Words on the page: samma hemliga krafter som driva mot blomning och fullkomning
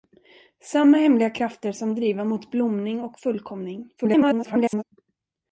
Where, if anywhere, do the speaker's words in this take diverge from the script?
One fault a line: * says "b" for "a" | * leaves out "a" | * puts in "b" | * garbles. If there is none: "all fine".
* garbles